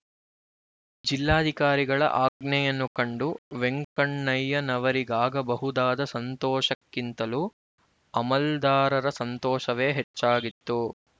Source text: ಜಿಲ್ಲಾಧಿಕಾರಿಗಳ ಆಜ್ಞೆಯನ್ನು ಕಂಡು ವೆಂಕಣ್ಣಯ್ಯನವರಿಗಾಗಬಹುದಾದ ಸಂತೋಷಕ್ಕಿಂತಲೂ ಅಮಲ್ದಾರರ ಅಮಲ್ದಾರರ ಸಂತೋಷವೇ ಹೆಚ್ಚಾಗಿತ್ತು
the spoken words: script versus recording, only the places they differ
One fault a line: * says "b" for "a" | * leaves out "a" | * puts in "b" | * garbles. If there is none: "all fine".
* leaves out "ಅಮಲ್ದಾರರ"